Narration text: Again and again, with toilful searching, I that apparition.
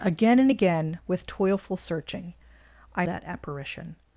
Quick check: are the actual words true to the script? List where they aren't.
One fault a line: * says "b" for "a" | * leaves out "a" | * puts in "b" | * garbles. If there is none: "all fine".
all fine